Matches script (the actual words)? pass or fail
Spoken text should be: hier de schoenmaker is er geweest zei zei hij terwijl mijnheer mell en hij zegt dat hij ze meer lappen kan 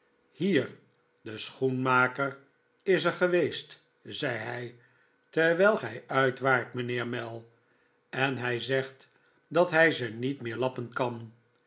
fail